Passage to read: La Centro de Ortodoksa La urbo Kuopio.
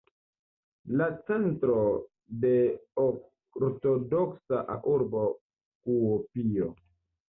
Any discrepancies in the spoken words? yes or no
no